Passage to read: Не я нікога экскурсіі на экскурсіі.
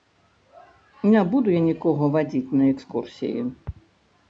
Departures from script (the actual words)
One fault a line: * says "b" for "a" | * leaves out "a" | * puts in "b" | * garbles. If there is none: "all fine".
* puts in "буду"
* says "вадзіць" for "экскурсіі"